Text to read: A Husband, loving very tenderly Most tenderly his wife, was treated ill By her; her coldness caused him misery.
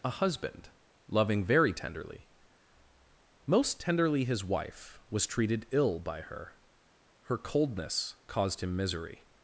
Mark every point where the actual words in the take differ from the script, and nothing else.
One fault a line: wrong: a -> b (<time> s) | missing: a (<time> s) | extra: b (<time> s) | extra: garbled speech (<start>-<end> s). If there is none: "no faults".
no faults